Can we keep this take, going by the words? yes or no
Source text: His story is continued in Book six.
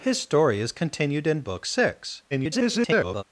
no